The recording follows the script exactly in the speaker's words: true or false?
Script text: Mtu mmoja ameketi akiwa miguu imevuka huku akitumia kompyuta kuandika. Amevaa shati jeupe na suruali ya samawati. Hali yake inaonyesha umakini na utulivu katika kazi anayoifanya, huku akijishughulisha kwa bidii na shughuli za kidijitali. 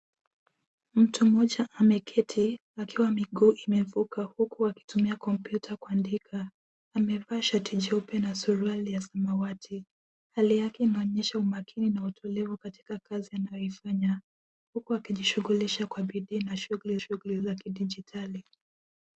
false